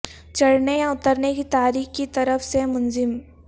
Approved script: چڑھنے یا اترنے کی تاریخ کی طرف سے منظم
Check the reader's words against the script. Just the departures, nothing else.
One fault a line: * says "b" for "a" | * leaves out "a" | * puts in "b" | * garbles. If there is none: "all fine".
all fine